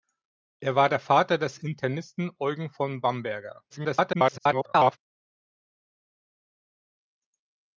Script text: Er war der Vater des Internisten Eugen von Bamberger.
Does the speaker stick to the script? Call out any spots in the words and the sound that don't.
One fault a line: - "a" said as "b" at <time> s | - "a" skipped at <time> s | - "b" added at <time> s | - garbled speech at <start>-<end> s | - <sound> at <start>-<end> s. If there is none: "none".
- garbled speech at 3.7-5.0 s